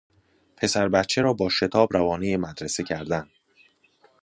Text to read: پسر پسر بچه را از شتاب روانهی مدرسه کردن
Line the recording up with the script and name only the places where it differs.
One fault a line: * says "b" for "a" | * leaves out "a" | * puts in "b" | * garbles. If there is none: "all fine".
* leaves out "پسر"
* says "با" for "از"